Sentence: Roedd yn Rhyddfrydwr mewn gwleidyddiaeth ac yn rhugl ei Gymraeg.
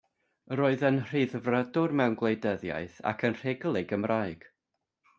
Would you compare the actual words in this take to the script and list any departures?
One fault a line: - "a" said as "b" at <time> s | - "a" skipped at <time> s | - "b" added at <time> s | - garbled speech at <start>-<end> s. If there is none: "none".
none